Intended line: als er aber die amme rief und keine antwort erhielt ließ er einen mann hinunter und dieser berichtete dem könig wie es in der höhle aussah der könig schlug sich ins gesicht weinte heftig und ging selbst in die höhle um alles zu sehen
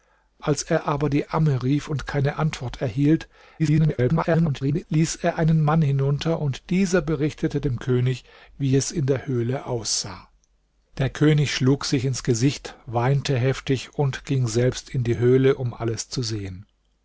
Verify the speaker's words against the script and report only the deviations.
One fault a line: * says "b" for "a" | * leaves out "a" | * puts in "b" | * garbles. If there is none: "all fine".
* garbles